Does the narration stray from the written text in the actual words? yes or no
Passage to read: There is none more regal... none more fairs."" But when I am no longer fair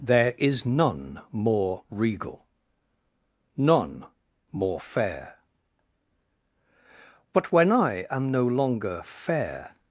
yes